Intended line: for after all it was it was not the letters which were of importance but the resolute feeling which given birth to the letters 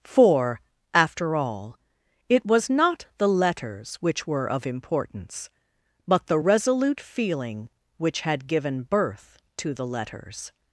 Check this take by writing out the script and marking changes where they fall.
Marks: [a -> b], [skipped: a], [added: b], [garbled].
for after all it was [skipped: it was] not the letters which were of importance but the resolute feeling which [added: had] given birth to the letters